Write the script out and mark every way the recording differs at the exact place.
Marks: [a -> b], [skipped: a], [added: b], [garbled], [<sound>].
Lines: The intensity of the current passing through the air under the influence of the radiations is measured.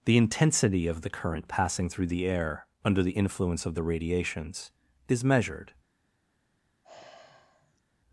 The intensity of the current passing through the air under the influence of the radiations is measured. [sigh]